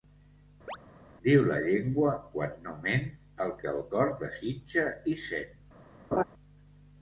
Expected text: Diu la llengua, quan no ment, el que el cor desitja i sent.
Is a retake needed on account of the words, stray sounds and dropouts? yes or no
yes